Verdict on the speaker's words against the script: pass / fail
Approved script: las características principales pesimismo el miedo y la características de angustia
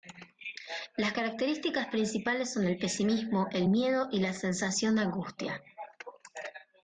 fail